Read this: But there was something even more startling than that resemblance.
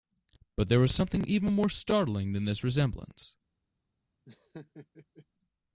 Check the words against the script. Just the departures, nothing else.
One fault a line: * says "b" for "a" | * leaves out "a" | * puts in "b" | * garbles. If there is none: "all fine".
* says "this" for "that"